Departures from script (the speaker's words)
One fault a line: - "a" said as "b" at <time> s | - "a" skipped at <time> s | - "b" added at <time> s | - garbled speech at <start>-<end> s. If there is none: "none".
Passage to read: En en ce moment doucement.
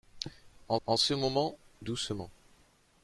none